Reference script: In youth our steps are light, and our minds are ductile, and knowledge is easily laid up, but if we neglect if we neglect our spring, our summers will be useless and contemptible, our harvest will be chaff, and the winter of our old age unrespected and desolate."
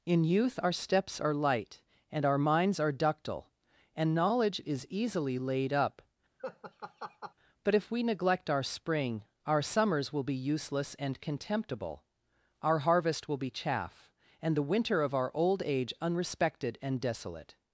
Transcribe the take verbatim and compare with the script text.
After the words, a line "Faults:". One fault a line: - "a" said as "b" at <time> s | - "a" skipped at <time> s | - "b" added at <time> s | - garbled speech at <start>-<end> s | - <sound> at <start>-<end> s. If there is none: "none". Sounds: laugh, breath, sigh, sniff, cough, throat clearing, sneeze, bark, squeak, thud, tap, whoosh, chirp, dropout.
In youth our steps are light, and our minds are ductile, and knowledge is easily laid up, but if we neglect our spring, our summers will be useless and contemptible, our harvest will be chaff, and the winter of our old age unrespected and desolate."
Faults:
- laugh at 6.4-7.3 s
- "if we neglect" skipped at 8.5 s